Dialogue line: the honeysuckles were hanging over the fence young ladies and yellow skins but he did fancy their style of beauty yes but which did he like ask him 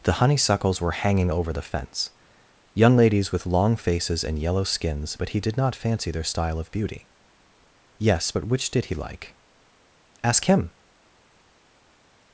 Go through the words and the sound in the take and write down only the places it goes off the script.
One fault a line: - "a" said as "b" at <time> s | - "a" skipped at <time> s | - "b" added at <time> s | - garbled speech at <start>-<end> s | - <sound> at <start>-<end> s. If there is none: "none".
- "with long faces" added at 3.3 s
- "not" added at 5.6 s